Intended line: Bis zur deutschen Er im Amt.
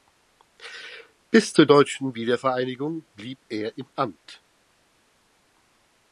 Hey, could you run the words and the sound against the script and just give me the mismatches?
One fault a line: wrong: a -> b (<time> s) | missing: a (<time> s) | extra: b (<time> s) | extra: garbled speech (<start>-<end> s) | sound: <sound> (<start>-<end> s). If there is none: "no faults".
extra: Wiedervereinigung blieb (2.1 s)